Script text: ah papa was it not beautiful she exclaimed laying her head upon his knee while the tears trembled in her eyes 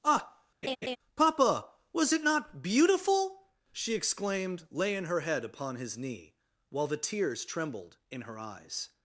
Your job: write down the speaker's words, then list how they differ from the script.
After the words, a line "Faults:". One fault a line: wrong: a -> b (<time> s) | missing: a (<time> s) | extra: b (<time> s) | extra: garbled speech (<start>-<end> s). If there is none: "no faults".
ah papa was it not beautiful she exclaimed laying her head upon his knee while the tears trembled in her eyes
Faults:
no faults